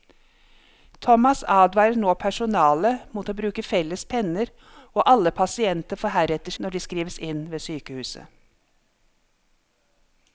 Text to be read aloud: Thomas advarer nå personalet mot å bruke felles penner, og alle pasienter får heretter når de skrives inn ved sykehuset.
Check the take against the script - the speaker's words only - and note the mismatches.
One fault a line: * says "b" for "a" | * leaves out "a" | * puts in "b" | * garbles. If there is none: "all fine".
all fine